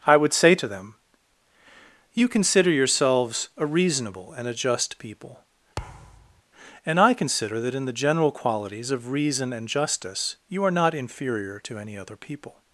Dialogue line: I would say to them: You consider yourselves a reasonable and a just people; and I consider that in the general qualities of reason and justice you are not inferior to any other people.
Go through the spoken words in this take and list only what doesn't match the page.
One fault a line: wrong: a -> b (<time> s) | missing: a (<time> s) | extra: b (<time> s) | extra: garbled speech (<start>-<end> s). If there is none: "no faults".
no faults